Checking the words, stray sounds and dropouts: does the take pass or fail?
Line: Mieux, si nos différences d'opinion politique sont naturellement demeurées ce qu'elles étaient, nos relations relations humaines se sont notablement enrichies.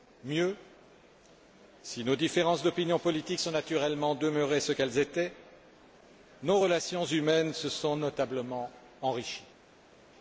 fail